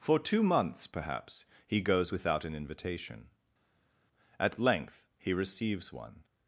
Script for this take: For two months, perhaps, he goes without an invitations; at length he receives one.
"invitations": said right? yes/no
no